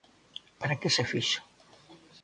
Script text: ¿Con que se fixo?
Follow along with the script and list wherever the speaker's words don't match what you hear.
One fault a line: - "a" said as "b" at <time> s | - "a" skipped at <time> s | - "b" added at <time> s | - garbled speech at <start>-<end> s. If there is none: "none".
- "Con" said as "Para" at 0.6 s